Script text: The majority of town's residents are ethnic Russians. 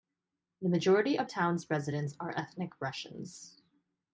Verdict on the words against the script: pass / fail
pass